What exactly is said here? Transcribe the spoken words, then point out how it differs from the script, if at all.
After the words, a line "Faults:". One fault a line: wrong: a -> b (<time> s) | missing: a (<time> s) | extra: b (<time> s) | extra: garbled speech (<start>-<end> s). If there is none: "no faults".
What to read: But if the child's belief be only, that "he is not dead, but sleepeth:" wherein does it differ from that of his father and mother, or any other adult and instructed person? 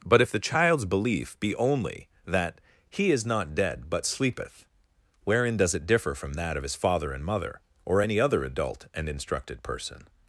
But if the child's belief be only, that "he is not dead, but sleepeth:" wherein does it differ from that of his father and mother, or any other adult and instructed person?
Faults:
no faults